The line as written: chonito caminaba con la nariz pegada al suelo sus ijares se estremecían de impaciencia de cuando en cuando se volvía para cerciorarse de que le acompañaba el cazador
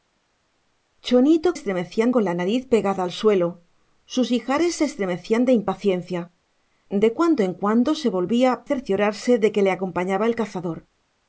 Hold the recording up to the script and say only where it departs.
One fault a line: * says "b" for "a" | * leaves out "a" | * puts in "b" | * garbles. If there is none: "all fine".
* says "estremecían" for "caminaba"
* leaves out "para"